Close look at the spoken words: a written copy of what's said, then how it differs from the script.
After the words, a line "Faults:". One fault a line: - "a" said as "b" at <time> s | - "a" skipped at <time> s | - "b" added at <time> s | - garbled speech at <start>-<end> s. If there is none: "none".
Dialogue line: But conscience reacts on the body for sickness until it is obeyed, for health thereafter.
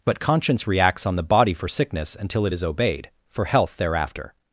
But conscience reacts on the body for sickness until it is obeyed, for health thereafter.
Faults:
none